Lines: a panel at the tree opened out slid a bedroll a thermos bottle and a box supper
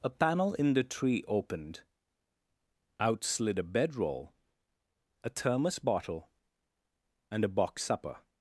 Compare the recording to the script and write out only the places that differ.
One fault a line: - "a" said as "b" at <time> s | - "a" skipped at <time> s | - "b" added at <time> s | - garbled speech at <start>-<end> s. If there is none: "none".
- "at" said as "in" at 0.6 s